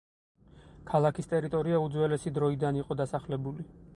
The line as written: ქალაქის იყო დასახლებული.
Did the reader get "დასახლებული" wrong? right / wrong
right